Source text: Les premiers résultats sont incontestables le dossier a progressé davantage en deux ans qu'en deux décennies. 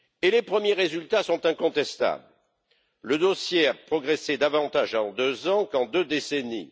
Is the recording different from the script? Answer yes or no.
no